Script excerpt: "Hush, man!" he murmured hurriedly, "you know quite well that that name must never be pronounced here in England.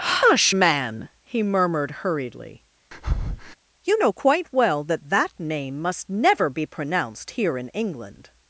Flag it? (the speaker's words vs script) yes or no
no